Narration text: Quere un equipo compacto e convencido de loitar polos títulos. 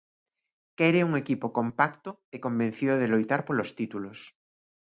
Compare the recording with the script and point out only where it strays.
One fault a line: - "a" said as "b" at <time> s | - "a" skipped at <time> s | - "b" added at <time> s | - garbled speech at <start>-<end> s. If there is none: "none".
none